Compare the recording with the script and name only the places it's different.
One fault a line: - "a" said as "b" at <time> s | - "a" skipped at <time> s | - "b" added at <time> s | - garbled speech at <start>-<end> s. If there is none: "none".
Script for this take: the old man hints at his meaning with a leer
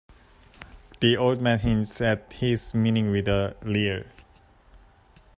none